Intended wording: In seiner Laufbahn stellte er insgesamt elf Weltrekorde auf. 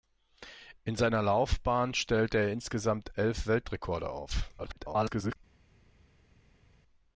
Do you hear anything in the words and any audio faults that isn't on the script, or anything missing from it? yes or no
yes